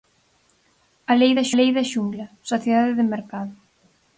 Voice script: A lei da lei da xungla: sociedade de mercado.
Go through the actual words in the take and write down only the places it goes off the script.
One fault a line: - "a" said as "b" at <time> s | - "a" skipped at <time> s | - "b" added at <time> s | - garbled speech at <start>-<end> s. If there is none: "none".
none